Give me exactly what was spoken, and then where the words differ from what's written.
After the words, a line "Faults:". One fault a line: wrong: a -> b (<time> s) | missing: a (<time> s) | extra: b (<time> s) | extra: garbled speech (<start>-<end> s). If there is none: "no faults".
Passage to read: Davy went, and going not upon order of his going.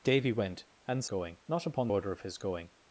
Davy went, and going not upon order of his going.
Faults:
no faults